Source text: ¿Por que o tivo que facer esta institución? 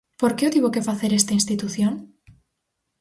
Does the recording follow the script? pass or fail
pass